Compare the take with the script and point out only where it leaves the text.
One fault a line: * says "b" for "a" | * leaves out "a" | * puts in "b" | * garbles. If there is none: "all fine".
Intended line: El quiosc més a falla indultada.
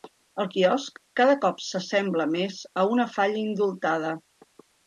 * puts in "cada cop s'assembla"
* puts in "una"